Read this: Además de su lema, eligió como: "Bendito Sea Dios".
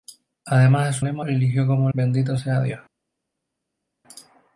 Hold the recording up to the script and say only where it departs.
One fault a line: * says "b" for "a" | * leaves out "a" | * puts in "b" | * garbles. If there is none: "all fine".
all fine